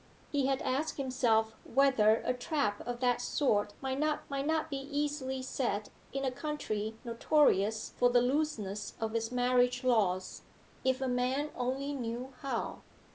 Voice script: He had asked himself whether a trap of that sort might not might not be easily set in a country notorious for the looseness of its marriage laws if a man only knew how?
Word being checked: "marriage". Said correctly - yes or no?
yes